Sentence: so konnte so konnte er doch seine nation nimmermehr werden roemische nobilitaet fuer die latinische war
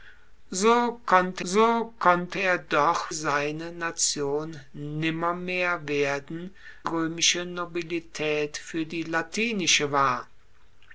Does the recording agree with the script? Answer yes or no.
yes